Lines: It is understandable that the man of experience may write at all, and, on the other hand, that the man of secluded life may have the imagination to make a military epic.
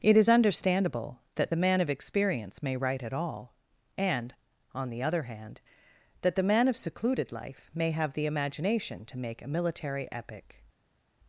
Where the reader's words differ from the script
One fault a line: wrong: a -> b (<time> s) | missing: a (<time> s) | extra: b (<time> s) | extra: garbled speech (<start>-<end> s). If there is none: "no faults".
no faults